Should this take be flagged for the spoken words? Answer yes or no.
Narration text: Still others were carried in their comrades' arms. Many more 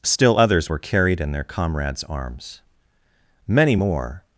no